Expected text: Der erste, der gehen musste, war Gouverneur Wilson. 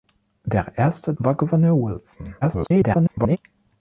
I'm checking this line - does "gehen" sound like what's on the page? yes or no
no